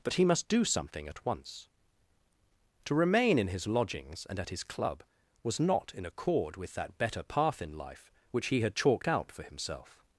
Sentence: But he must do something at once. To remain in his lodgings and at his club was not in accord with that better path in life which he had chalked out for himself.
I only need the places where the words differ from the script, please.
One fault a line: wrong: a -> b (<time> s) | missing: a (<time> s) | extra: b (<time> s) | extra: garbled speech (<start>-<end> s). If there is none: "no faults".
no faults